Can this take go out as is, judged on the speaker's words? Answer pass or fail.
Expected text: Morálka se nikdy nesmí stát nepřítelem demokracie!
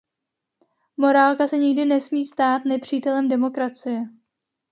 pass